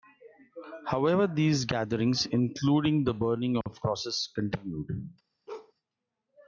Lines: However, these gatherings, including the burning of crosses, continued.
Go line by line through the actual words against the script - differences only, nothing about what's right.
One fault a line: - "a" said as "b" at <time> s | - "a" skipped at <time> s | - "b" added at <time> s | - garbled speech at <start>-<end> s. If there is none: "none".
none